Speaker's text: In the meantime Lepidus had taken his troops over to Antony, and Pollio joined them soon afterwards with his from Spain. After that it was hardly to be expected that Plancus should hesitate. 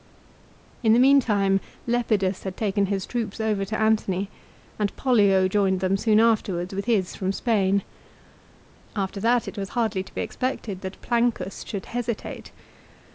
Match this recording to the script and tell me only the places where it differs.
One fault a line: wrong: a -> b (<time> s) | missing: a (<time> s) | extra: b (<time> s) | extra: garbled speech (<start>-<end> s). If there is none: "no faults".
no faults